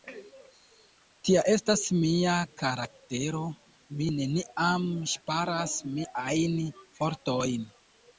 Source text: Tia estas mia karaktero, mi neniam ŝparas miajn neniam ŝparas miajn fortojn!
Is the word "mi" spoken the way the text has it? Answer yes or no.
yes